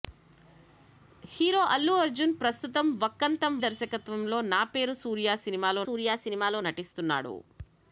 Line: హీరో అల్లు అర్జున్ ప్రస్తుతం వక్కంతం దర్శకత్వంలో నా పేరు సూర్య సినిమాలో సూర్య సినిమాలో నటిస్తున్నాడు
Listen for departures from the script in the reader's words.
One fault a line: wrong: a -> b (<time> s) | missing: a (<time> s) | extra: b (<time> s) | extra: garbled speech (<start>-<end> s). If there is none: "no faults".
no faults